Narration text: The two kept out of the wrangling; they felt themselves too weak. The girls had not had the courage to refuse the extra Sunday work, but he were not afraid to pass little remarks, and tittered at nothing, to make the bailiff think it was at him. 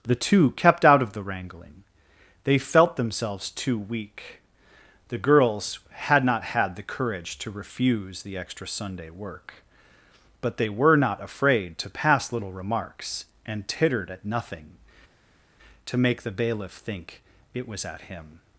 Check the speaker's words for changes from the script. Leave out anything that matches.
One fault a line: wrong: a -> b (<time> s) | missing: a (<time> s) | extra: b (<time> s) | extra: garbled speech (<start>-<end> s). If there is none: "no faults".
wrong: he -> they (10.6 s)